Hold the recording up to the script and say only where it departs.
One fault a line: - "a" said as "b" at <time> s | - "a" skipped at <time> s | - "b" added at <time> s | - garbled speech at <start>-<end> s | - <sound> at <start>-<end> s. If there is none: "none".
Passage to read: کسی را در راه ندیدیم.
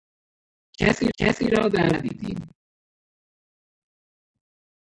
- "کسی" added at 1.2 s
- "راه" skipped at 1.9 s